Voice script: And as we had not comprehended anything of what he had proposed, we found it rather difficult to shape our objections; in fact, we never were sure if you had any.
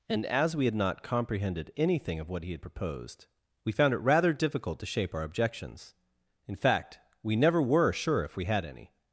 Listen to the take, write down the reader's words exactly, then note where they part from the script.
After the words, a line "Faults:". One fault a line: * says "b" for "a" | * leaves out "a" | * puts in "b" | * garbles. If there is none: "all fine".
And as we had not comprehended anything of what he had proposed, we found it rather difficult to shape our objections; in fact, we never were sure if we had any.
Faults:
* says "we" for "you"